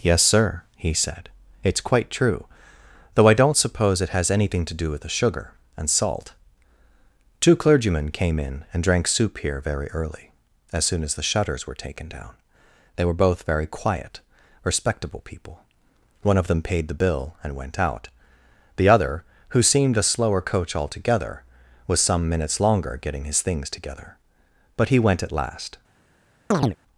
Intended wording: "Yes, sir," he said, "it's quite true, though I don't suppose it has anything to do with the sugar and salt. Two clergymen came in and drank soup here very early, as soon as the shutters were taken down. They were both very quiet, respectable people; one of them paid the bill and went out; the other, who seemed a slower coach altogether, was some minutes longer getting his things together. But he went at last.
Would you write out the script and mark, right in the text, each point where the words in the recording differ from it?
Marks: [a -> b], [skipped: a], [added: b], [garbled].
"Yes, sir," he said, "it's quite true, though I don't suppose it has anything to do with the sugar and salt. Two clergymen came in and drank soup here very early, as soon as the shutters were taken down. They were both very quiet, respectable people; one of them paid the bill and went out; the other, who seemed a slower coach altogether, was some minutes longer getting his things together. But he went at last.